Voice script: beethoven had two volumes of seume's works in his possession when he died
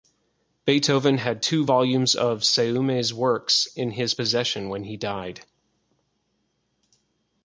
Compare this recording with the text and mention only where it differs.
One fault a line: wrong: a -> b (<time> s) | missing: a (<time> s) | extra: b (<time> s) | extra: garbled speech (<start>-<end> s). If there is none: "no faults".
no faults